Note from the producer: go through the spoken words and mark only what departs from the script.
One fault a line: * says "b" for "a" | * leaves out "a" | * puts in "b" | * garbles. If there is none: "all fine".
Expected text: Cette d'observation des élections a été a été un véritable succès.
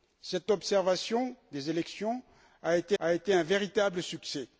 all fine